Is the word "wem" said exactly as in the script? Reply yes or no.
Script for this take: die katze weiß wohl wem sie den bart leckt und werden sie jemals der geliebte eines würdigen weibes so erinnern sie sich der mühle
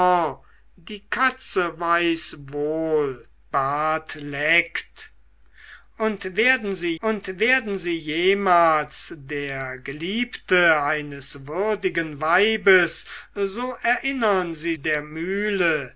no